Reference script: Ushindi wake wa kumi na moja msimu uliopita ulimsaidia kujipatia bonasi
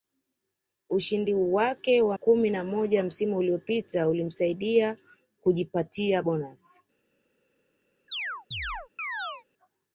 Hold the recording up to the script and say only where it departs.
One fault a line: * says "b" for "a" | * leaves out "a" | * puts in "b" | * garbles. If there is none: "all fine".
all fine